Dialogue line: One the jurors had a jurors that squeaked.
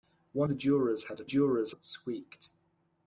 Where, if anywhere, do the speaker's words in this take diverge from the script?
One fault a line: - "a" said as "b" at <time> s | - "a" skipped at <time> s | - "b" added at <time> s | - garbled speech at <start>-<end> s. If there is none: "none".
none